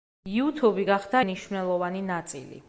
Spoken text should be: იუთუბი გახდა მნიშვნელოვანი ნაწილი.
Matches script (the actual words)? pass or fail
pass